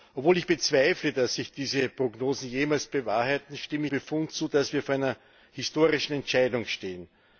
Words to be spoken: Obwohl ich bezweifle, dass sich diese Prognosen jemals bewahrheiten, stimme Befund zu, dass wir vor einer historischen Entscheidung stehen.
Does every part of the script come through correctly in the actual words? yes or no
yes